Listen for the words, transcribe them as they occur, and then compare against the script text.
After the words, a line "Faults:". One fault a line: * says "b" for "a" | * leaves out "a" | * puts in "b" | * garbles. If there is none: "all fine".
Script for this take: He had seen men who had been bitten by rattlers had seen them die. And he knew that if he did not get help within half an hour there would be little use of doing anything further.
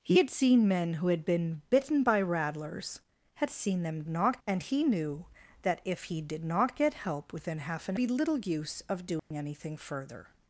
He had seen men who had been bitten by rattlers had seen them not. And he knew that if he did not get help within half an be little use of doing anything further.
Faults:
* says "not" for "die"
* leaves out "hour there would"